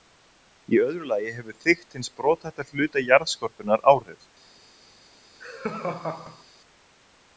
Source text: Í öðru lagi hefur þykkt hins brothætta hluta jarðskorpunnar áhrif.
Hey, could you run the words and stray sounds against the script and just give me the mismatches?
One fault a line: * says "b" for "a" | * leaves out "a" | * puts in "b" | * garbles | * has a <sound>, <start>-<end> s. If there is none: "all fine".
* has a laugh, 5.4-6.4 s